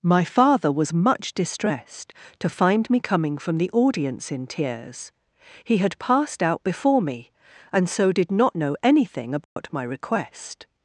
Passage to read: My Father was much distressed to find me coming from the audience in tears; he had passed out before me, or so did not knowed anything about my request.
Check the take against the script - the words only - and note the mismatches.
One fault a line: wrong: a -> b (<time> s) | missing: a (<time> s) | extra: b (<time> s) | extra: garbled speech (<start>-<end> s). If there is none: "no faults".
wrong: or -> and (7.7 s)
wrong: knowed -> know (8.5 s)